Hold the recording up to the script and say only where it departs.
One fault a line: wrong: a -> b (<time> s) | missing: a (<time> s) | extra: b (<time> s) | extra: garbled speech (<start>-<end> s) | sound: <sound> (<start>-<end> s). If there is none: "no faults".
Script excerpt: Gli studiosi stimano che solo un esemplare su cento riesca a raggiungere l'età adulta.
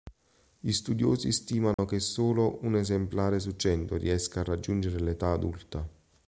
sound: dropout (1.7-1.8 s)